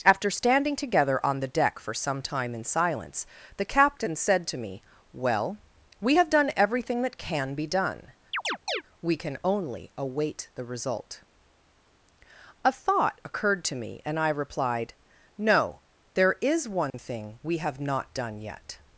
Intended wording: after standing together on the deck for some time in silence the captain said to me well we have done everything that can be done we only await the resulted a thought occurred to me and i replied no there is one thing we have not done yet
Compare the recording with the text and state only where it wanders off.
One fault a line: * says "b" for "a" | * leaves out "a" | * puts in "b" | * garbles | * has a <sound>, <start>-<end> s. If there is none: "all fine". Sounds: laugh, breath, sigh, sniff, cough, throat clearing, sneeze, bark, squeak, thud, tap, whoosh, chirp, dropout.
* has a chirp, 8.3-8.8 s
* puts in "can"
* says "result" for "resulted"
* has a dropout, 16.9-16.9 s